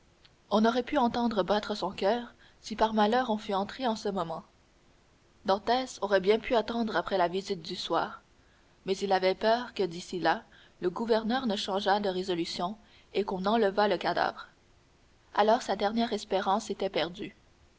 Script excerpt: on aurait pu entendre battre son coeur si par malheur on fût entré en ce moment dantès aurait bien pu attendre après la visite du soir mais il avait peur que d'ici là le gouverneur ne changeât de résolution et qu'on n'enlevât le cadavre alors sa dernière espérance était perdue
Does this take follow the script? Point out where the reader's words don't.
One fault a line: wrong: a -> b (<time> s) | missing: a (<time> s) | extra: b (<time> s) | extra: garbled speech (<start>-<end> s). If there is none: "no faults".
no faults